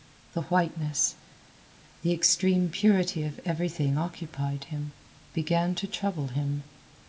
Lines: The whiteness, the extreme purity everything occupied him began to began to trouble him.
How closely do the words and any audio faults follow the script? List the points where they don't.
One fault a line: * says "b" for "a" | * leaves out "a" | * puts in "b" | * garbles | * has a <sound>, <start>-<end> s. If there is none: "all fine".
* puts in "of"
* leaves out "began to"